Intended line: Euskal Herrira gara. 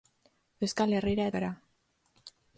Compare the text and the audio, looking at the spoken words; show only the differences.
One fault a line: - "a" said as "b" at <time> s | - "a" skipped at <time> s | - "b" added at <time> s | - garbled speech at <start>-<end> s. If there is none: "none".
none